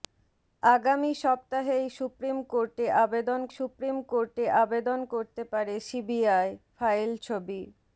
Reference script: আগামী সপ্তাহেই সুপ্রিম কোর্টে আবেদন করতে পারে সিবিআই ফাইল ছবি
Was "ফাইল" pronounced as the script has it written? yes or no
yes